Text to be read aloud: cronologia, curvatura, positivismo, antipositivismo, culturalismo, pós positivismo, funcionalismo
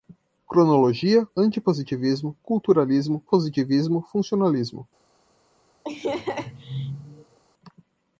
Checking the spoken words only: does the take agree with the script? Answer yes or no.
no